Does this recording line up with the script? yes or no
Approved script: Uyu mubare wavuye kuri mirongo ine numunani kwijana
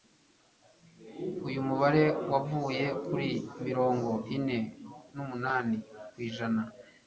yes